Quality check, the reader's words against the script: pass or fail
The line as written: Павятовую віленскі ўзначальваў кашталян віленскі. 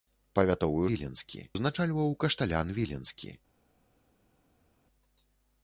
pass